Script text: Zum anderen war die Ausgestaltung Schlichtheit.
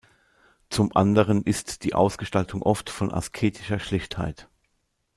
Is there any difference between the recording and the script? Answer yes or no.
yes